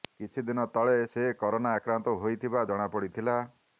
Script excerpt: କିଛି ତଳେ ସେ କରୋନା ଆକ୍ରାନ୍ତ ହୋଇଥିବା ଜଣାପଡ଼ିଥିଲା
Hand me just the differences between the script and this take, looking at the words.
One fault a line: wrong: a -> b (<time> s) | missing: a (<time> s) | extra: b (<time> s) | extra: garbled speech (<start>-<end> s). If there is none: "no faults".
extra: ଦିନ (0.5 s)